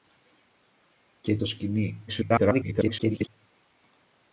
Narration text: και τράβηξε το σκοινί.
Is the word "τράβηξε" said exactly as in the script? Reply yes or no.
no